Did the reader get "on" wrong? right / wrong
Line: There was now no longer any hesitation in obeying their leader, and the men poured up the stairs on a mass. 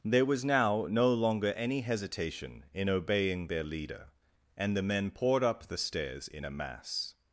wrong